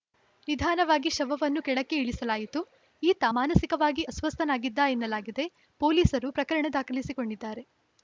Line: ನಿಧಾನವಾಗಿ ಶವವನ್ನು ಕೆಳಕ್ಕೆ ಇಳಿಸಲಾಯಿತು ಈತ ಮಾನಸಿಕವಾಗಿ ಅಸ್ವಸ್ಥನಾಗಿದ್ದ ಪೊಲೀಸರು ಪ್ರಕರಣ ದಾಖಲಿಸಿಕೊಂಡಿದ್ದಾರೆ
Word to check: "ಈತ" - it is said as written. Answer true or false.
true